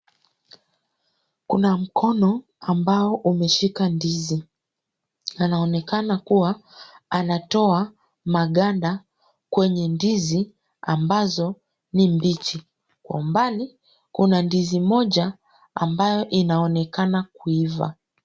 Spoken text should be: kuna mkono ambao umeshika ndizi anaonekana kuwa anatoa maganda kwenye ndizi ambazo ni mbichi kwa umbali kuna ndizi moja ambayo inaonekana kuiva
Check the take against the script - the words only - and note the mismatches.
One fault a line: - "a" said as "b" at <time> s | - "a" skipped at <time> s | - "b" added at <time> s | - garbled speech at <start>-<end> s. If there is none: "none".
none